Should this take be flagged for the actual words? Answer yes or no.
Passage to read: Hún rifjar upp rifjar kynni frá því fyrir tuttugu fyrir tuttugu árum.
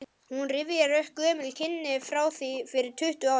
yes